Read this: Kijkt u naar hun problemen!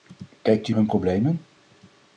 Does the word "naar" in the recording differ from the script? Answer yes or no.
yes